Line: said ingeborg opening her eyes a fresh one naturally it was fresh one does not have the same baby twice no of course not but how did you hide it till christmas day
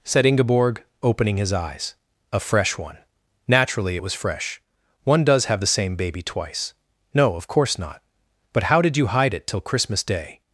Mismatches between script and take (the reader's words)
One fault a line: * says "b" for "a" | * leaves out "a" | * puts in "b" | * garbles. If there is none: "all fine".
* says "his" for "her"
* leaves out "not"